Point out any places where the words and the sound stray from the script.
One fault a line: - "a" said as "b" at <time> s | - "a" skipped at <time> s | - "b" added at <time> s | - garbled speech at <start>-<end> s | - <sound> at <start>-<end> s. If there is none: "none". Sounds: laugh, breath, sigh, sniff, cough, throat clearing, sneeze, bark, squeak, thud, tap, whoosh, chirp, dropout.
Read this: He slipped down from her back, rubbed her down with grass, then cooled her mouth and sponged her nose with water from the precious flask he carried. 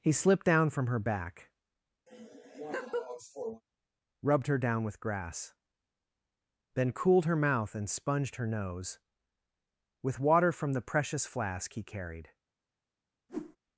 - laugh at 2.1-3.6 s
- whoosh at 13.3-13.6 s